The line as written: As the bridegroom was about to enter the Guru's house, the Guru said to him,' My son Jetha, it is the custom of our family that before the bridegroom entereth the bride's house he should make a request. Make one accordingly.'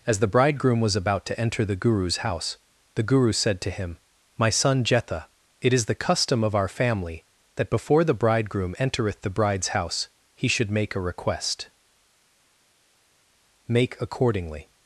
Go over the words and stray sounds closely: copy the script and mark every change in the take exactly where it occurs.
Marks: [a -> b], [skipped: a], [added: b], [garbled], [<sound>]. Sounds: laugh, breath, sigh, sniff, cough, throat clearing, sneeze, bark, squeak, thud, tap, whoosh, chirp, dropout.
As the bridegroom was about to enter the Guru's house, the Guru said to him,' My son Jetha, it is the custom of our family that before the bridegroom entereth the bride's house he should make a request. Make [skipped: one] accordingly.'